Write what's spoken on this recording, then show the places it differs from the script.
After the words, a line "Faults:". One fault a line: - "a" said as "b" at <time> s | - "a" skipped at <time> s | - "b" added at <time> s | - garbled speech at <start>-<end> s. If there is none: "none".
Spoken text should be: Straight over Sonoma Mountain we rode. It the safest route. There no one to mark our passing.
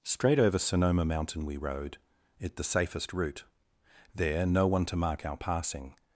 Straight over Sonoma Mountain we rode. It the safest route. There no one to mark our passing.
Faults:
none